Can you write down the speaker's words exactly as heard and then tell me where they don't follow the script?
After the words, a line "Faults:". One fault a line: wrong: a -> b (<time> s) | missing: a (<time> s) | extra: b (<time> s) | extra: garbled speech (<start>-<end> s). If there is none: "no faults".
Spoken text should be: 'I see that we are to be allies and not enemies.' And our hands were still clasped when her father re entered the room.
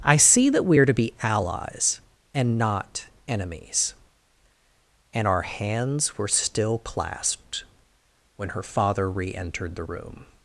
'I see that we are to be allies and not enemies.' And our hands were still clasped when her father re entered the room.
Faults:
no faults